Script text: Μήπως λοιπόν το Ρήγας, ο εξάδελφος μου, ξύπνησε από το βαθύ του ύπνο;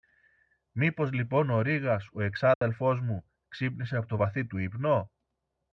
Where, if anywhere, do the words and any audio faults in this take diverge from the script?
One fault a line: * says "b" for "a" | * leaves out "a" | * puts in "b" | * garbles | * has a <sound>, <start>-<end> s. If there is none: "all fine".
* says "ο" for "το"
* has a dropout, 2.5-2.6 s